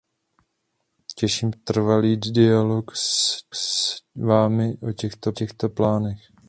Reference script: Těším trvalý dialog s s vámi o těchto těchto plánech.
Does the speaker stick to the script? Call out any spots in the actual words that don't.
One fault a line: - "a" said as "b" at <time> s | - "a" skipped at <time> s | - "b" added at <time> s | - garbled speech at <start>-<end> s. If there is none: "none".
none